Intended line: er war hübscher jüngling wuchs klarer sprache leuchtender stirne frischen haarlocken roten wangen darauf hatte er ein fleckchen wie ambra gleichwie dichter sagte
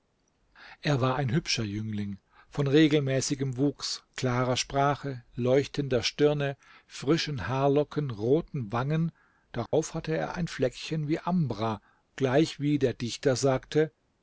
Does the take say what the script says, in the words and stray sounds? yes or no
no